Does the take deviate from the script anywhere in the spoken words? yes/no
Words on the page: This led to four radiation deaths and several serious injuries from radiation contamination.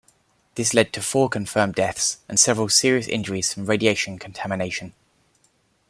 yes